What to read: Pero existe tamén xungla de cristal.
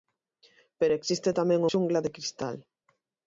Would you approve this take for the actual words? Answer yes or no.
yes